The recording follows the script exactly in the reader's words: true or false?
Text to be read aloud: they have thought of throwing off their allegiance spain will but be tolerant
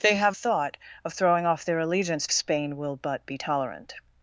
true